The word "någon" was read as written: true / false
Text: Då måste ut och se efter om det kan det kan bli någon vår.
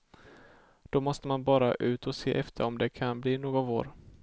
true